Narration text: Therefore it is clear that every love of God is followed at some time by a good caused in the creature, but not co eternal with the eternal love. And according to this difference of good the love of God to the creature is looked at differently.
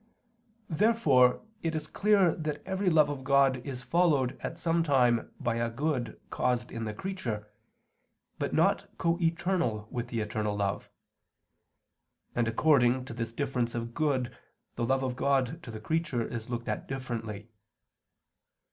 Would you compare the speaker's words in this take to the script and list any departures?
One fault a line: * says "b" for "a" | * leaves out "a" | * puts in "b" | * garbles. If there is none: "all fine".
all fine